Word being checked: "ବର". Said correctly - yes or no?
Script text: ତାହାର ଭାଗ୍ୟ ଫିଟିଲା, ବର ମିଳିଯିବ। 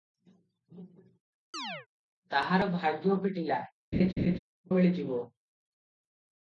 no